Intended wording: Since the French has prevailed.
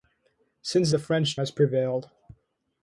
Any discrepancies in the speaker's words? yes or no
no